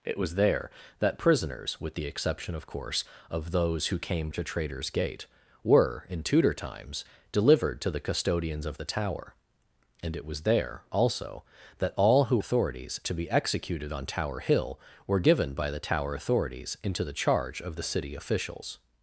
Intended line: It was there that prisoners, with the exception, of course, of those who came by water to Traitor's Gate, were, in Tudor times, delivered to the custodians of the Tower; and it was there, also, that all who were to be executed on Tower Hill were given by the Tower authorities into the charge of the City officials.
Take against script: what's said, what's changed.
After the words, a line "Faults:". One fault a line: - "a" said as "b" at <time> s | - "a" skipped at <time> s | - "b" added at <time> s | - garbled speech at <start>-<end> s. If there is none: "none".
It was there that prisoners, with the exception, of course, of those who came to Traitor's Gate, were, in Tudor times, delivered to the custodians of the Tower; and it was there, also, that all who authorities to be executed on Tower Hill were given by the Tower authorities into the charge of the City officials.
Faults:
- "by water" skipped at 4.3 s
- "were" said as "authorities" at 12.4 s